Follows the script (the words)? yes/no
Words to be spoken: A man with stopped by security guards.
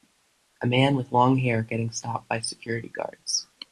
no